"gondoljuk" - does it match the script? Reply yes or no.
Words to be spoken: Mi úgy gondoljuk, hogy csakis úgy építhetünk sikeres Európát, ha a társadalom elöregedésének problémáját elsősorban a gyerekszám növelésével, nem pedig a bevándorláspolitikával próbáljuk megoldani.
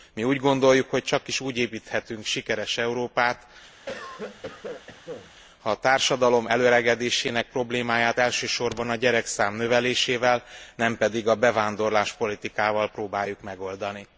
yes